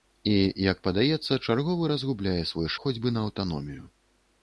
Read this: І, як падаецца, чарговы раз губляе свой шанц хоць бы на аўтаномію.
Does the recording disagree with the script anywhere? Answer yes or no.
yes